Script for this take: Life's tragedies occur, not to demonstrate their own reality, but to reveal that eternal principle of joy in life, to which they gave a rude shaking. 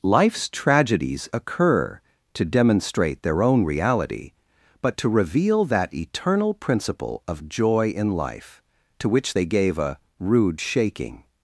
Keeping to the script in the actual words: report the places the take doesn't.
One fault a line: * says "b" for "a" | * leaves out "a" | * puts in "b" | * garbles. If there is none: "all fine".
* leaves out "not"